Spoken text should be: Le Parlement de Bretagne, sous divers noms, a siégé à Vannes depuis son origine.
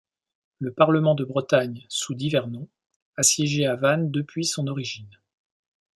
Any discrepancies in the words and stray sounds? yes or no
no